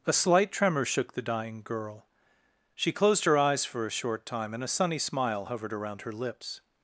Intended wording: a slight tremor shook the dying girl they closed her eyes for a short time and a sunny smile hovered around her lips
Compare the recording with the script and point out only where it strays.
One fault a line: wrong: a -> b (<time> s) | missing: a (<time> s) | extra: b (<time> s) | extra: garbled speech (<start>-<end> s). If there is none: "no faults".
wrong: they -> she (2.7 s)